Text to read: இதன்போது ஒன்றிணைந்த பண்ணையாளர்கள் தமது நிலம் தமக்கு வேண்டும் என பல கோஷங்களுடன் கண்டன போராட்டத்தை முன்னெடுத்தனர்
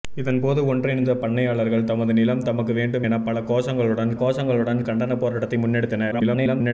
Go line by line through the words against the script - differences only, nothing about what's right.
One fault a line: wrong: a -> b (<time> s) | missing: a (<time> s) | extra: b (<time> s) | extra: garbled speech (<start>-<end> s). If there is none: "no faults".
extra: கோஷங்களுடன் (4.1 s)
extra: garbled speech (6.1-6.7 s)